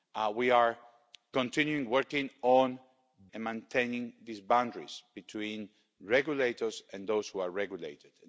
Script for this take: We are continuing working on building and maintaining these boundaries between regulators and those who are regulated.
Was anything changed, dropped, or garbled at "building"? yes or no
yes